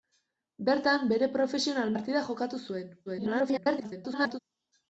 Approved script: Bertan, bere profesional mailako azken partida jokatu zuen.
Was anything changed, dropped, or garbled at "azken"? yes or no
yes